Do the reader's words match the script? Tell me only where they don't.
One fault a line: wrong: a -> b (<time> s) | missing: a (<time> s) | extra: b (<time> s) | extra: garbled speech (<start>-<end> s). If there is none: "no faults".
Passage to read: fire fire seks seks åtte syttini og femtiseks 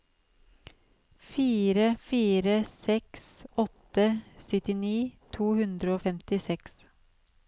missing: seks (3.3 s)
extra: to hundre (5.4 s)